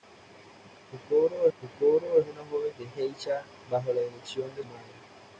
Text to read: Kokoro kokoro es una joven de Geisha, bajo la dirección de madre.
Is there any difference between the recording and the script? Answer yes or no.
no